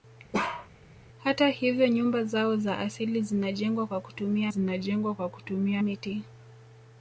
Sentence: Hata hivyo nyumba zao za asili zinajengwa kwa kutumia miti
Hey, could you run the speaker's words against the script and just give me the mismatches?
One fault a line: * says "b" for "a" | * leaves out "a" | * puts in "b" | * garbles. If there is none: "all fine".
* puts in "zinajengwa kwa kutumia"